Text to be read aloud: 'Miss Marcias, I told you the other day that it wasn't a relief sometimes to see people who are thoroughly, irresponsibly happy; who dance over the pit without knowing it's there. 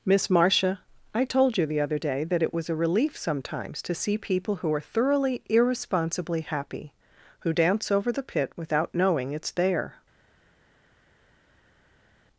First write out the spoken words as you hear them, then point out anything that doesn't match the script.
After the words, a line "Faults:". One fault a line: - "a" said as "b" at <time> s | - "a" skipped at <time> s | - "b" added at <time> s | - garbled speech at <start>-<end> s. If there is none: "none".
'Miss Marcia, I told you the other day that it was a relief sometimes to see people who are thoroughly, irresponsibly happy; who dance over the pit without knowing it's there.
Faults:
- "Marcias" said as "Marcia" at 0.3 s
- "wasn't" said as "was" at 2.5 s